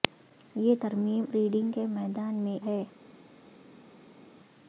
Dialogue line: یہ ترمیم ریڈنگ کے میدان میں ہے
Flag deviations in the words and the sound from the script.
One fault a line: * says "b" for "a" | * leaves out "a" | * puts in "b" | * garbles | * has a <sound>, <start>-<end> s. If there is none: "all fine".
all fine